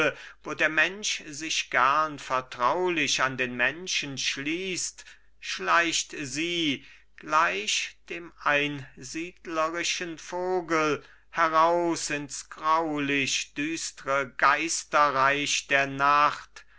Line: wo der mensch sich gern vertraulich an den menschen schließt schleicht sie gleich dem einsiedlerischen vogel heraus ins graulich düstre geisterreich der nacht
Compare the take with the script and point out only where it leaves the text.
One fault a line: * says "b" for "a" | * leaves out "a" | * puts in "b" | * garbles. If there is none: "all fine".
all fine